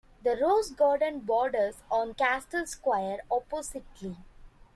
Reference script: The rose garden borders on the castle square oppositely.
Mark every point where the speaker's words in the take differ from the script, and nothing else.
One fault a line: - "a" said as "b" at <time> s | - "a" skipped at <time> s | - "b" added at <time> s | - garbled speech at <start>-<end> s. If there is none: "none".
- "the" skipped at 2.1 s